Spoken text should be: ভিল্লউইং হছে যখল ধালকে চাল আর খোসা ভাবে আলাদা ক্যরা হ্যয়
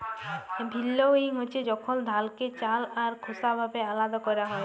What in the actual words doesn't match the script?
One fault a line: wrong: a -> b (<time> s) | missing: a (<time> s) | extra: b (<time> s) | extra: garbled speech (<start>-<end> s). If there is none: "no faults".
no faults